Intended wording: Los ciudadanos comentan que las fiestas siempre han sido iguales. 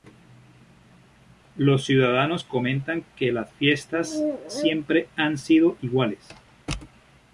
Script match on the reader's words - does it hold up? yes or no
yes